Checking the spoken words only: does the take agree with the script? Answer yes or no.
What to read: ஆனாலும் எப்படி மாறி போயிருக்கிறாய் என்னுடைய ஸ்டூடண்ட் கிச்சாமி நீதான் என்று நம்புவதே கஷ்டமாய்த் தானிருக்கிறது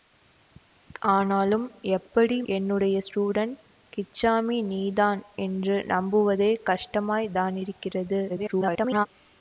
no